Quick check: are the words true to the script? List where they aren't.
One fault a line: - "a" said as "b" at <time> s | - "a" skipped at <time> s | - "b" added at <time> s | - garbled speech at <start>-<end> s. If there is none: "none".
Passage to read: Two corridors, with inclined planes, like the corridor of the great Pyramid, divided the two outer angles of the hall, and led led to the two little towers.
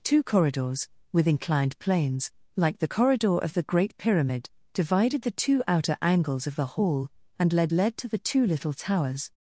none